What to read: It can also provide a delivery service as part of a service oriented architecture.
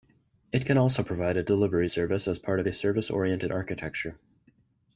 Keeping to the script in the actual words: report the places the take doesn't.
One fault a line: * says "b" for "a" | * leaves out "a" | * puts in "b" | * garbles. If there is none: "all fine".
all fine